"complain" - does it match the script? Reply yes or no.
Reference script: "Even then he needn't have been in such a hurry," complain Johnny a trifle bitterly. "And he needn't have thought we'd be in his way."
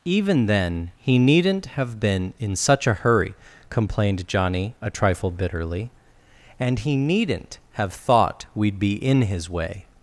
no